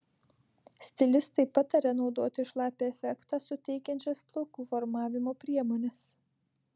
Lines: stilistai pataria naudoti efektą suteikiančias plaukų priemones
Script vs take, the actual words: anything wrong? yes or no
yes